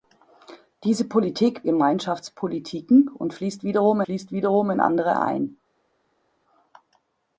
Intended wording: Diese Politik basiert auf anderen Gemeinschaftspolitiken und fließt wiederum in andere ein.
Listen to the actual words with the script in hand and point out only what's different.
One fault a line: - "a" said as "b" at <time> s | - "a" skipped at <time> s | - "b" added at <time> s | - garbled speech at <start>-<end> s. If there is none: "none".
- "basiert auf anderen Gemeinschaftspolitiken und" said as "Gemeinschaftspolitiken und fließt wiederum" at 1.6 s